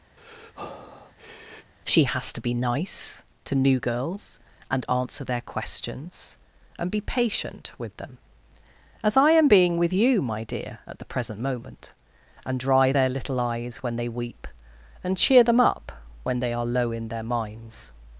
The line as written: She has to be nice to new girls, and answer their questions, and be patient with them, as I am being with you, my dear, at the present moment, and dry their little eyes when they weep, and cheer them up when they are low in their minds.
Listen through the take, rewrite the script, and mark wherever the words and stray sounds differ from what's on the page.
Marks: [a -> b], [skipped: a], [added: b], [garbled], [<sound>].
[breath] She has to be nice to new girls, and answer their questions, and be patient with them, as I am being with you, my dear, at the present moment, and dry their little eyes when they weep, and cheer them up when they are low in their minds.